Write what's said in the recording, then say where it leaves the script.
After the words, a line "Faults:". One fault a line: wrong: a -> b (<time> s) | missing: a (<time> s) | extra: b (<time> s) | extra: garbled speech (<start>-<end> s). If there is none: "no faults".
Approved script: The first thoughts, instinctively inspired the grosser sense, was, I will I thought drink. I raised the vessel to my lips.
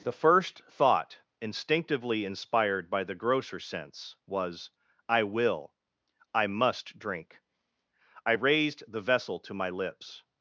The first thought, instinctively inspired by the grosser sense, was, I will I must drink. I raised the vessel to my lips.
Faults:
wrong: thoughts -> thought (0.7 s)
extra: by (2.9 s)
wrong: thought -> must (6.5 s)